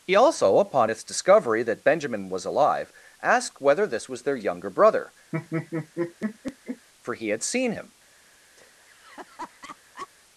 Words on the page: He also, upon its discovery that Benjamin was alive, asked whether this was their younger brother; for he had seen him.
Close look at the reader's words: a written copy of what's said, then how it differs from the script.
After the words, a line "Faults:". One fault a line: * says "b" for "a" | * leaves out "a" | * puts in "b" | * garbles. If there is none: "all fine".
He also, upon its discovery that Benjamin was alive, asked whether this was their younger brother; for he had seen him.
Faults:
all fine